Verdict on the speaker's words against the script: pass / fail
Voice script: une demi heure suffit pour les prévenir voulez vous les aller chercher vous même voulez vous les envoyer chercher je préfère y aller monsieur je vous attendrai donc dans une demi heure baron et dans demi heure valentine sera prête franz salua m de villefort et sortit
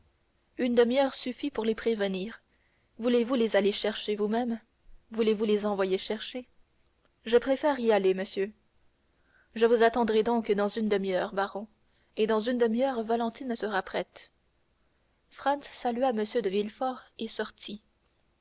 fail